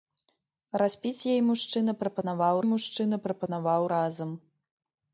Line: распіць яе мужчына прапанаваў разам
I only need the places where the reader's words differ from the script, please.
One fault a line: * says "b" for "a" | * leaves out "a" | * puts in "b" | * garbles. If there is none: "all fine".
* puts in "мужчына прапанаваў"